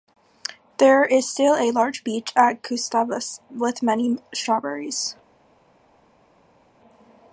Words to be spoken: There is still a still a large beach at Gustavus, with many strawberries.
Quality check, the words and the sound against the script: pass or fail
fail